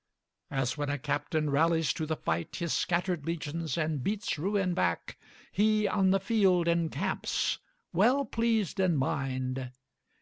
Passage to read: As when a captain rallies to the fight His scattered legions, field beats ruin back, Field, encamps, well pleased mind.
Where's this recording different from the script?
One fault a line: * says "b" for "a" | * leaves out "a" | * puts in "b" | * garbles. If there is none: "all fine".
* says "and" for "field"
* puts in "He on the"
* puts in "in"